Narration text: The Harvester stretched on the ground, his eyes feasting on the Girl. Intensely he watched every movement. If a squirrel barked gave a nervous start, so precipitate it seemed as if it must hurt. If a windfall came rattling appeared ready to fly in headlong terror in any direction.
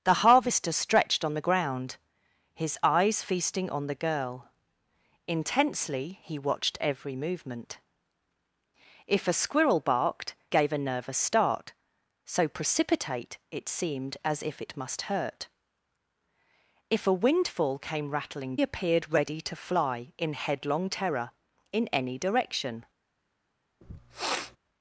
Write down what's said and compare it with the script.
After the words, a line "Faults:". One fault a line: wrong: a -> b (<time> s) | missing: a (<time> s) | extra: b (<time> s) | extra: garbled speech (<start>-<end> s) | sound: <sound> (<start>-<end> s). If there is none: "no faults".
The Harvester stretched on the ground, his eyes feasting on the Girl. Intensely he watched every movement. If a squirrel barked gave a nervous start, so precipitate it seemed as if it must hurt. If a windfall came rattling appeared ready to fly in headlong terror in any direction.
Faults:
sound: sniff (23.8-24.6 s)